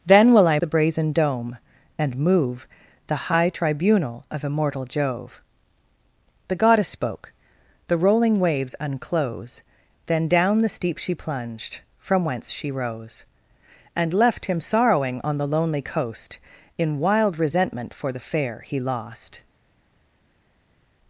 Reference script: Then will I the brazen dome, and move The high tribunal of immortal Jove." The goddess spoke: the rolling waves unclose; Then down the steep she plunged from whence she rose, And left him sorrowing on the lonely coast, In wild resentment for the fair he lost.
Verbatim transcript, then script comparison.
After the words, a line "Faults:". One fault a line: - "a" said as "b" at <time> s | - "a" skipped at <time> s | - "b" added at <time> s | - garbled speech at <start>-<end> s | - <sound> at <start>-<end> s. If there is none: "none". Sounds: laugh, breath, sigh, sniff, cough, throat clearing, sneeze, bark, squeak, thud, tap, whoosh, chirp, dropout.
Then will I the brazen dome, and move The high tribunal of immortal Jove." The goddess spoke: the rolling waves unclose; Then down the steep she plunged from whence she rose, And left him sorrowing on the lonely coast, In wild resentment for the fair he lost.
Faults:
none